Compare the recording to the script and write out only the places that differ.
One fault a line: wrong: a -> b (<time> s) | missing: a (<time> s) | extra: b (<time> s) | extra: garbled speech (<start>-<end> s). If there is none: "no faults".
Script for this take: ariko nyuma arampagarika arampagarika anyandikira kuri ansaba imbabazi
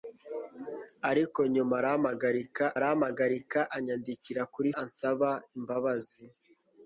no faults